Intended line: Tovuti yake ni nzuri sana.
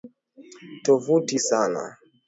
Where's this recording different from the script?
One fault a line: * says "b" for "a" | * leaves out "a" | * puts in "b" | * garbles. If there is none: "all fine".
* leaves out "yake ni nzuri"